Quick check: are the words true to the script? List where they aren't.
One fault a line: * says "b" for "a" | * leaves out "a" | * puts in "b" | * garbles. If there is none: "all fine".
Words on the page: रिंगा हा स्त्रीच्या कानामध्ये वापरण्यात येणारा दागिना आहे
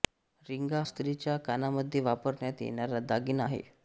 * leaves out "हा"